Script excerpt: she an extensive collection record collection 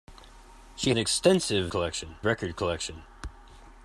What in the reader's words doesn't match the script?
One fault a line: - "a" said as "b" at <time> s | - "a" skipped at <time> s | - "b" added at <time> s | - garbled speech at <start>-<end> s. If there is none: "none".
none